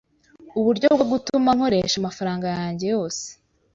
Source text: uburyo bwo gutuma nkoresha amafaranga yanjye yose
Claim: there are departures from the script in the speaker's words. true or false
false